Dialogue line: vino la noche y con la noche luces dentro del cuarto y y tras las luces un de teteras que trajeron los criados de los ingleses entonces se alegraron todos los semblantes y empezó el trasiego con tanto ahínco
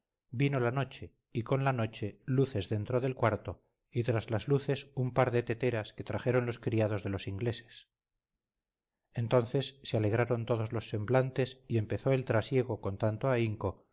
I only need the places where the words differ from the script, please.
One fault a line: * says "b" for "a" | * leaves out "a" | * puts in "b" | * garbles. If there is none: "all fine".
* leaves out "y"
* puts in "par"